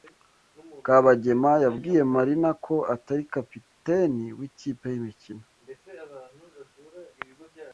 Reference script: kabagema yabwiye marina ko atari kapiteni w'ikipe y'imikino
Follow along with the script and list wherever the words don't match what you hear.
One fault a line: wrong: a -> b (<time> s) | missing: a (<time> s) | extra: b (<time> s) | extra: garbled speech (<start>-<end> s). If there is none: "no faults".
no faults